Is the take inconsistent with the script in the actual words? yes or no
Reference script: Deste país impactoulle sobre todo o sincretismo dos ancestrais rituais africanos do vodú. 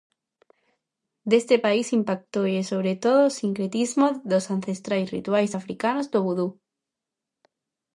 no